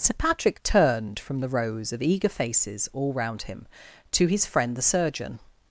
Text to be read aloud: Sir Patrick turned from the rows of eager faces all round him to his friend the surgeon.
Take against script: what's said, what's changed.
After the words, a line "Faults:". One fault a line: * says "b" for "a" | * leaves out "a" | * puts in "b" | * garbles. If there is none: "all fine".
Sir Patrick turned from the rows of eager faces all round him to his friend the surgeon.
Faults:
all fine